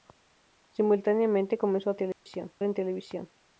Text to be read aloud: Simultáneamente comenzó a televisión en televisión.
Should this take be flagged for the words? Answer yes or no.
no